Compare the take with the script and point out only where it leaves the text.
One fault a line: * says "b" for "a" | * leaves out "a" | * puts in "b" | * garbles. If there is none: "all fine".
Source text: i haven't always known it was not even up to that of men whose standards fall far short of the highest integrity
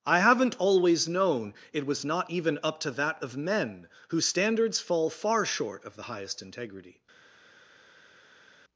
all fine